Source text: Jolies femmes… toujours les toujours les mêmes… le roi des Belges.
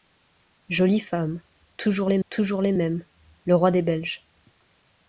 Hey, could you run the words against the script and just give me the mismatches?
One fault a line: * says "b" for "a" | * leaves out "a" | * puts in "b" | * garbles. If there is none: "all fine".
all fine